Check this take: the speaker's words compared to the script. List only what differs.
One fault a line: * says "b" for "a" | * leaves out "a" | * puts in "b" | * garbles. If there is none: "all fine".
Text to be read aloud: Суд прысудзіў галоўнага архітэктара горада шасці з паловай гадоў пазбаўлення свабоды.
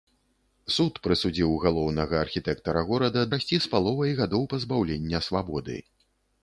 all fine